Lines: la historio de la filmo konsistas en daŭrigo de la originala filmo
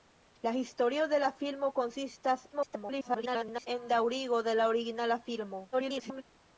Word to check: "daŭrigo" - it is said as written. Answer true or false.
true